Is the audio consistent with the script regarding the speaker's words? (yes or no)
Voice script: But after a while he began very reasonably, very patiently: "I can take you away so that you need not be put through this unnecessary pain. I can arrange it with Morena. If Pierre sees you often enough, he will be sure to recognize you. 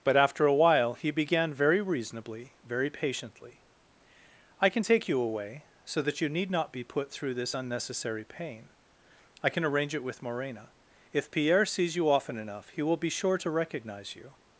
yes